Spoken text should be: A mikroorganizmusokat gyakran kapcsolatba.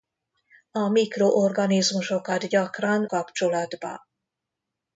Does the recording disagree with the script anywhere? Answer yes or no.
no